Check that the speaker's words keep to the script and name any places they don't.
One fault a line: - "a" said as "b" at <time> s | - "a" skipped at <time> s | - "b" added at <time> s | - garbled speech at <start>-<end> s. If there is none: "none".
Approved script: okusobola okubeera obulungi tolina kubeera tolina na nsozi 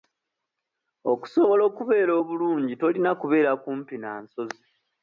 - "tolina" said as "kumpi" at 3.6 s